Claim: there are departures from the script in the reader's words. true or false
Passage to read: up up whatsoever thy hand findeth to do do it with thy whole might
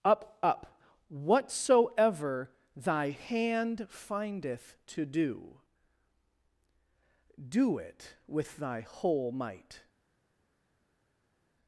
false